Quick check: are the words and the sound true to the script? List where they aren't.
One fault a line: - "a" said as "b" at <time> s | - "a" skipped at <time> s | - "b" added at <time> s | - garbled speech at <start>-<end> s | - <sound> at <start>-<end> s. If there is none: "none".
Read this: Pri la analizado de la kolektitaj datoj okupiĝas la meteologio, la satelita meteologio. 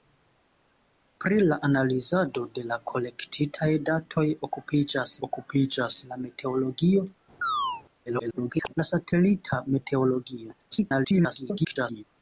- "okupiĝas" added at 5.3 s
- chirp at 7.4-7.8 s
- garbled speech at 8.1-8.7 s
- garbled speech at 10.7-12.0 s